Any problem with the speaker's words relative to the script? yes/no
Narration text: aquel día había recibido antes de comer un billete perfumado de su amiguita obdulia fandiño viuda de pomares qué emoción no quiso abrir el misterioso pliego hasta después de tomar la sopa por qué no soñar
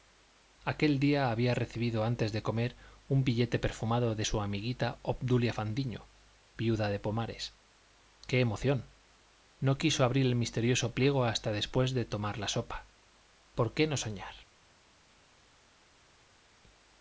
no